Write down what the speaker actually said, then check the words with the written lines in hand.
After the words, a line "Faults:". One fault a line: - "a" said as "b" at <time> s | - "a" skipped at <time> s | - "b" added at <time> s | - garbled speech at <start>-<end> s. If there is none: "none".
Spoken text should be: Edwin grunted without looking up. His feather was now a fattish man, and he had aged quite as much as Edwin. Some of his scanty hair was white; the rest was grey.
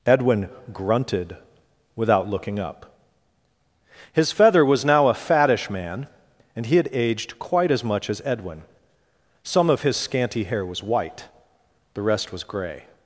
Edwin grunted without looking up. His feather was now a fattish man, and he had aged quite as much as Edwin. Some of his scanty hair was white; the rest was grey.
Faults:
none